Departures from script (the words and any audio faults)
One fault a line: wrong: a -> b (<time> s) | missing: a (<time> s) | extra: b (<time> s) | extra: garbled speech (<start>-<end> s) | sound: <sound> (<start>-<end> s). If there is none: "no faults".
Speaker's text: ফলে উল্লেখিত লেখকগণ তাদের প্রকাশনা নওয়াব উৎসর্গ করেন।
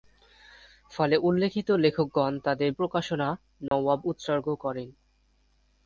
sound: dropout (3.7-3.7 s)